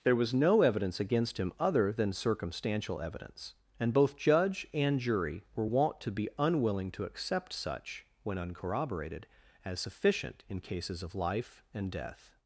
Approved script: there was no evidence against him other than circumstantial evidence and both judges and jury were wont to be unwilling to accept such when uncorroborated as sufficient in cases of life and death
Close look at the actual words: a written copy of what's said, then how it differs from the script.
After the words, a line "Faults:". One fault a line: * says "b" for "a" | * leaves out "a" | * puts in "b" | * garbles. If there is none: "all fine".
there was no evidence against him other than circumstantial evidence and both judge and jury were wont to be unwilling to accept such when uncorroborated as sufficient in cases of life and death
Faults:
* says "judge" for "judges"